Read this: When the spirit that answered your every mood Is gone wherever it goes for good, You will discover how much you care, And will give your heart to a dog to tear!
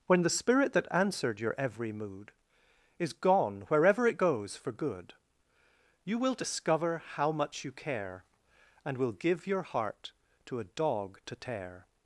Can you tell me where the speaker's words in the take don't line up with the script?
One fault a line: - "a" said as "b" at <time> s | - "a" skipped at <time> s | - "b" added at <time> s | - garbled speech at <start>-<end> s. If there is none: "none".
none